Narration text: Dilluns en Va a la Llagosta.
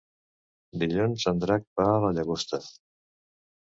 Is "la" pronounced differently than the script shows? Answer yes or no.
no